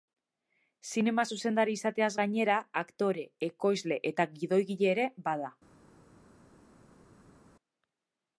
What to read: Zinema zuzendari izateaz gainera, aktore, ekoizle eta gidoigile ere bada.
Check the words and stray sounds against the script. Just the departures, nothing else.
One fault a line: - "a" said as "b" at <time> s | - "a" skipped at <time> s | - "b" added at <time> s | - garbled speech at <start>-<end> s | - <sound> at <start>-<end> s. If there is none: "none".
none